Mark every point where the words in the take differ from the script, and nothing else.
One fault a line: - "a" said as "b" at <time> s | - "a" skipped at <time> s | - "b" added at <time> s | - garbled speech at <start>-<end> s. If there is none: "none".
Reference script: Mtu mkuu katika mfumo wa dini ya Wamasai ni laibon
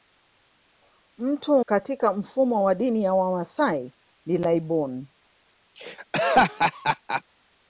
- "mkuu" skipped at 1.6 s